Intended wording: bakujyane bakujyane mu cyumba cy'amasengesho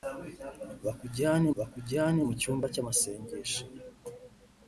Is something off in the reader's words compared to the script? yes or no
no